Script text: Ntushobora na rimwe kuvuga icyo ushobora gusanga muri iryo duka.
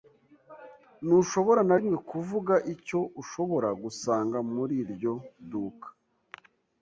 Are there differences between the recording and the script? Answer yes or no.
no